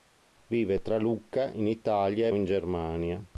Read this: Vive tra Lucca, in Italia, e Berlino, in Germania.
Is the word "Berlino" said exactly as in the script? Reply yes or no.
no